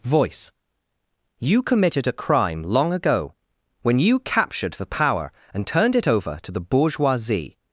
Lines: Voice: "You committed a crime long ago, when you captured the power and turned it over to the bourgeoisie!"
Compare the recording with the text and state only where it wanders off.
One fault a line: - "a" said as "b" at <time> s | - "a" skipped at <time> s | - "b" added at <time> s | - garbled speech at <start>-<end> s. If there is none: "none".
none